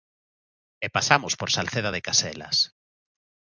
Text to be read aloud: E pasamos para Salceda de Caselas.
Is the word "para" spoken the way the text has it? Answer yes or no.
no